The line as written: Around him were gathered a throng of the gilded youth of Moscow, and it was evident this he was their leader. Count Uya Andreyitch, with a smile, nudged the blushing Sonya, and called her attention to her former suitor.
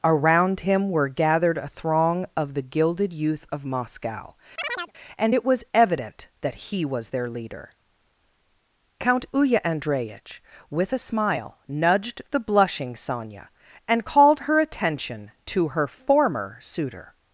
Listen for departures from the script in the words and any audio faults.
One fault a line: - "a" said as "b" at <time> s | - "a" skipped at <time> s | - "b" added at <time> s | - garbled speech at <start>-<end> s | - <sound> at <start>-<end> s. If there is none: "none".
- chirp at 4.6-4.9 s
- "this" said as "that" at 6.4 s